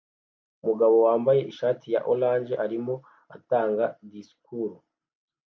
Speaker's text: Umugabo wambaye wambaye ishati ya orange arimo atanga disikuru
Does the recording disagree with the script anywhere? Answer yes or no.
yes